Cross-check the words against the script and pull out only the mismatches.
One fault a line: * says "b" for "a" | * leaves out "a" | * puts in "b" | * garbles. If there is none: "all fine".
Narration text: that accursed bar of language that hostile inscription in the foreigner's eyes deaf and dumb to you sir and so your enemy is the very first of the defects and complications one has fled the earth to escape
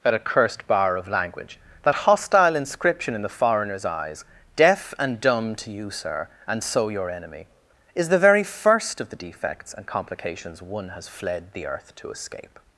all fine